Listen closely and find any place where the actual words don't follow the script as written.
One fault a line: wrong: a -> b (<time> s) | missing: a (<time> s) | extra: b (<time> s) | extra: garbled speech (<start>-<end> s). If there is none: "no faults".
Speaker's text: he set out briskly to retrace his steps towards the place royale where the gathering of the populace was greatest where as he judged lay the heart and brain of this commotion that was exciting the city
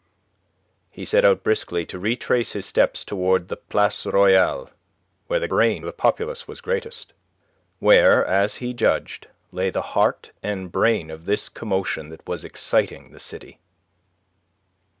wrong: gathering -> brain (5.5 s)